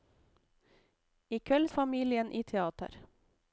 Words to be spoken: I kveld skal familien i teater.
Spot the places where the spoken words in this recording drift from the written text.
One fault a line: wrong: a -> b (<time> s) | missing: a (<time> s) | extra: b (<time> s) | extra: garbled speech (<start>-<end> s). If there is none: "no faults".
missing: skal (1.7 s)